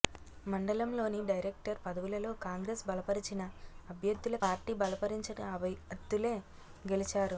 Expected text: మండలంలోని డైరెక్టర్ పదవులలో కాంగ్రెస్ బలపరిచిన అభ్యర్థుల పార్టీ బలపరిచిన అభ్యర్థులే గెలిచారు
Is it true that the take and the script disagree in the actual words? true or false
false